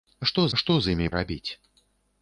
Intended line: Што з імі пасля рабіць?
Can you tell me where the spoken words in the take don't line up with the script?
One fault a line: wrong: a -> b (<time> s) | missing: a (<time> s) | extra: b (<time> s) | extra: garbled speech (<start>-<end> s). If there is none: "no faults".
extra: што (0.6 s)
missing: пасля (1.1 s)